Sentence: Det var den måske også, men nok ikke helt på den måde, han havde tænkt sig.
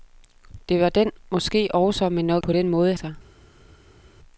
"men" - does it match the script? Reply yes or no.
yes